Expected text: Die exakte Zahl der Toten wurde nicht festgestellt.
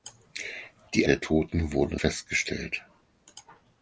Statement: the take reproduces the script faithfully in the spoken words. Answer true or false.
false